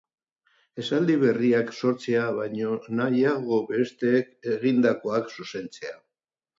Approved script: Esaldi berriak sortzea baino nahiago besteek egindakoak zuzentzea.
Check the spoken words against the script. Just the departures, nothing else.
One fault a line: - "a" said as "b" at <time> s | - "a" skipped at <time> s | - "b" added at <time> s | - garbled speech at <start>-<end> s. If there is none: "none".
none